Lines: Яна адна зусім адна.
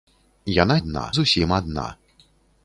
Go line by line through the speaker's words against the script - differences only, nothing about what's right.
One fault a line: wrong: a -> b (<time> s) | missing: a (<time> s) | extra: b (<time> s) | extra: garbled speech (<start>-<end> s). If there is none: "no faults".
no faults